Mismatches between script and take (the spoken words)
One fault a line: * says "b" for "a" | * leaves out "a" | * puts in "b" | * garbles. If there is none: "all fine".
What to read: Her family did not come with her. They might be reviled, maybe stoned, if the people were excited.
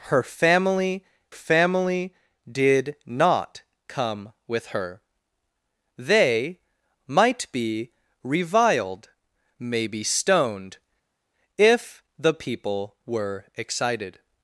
* puts in "family"